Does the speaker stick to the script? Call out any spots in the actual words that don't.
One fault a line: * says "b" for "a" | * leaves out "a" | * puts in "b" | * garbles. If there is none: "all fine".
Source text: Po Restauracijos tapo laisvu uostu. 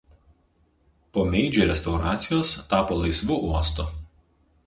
* puts in "Meidži"